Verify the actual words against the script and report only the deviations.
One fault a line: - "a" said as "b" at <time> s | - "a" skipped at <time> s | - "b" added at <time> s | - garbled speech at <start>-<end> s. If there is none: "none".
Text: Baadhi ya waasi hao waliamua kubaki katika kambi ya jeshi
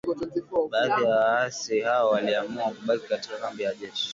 none